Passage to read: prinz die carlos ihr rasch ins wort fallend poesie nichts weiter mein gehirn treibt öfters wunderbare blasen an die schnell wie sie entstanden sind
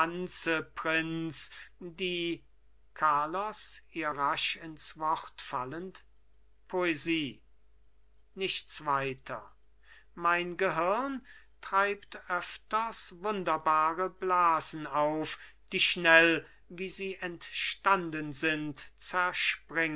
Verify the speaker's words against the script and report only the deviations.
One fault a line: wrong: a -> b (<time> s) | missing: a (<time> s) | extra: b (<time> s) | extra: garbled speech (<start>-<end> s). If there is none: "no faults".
wrong: an -> auf (14.9 s)